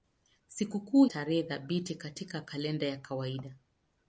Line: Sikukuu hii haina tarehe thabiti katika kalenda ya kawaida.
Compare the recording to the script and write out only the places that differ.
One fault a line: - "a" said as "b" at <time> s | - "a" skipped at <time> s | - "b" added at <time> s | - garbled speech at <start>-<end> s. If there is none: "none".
- "hii haina" skipped at 1.1 s